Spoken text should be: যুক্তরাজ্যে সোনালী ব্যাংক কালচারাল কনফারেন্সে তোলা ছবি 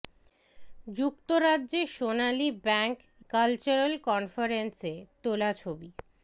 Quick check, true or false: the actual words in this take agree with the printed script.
true